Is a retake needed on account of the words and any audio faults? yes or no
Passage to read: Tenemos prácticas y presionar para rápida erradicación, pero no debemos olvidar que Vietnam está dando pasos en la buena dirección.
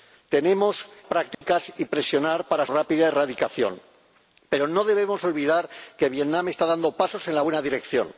yes